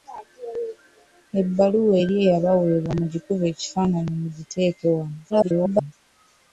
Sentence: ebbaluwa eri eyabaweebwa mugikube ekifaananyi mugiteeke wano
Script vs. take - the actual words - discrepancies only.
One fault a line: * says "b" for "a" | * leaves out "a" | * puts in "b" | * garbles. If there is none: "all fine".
* garbles